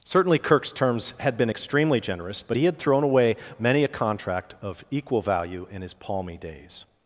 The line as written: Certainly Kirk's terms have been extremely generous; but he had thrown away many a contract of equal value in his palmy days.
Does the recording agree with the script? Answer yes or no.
no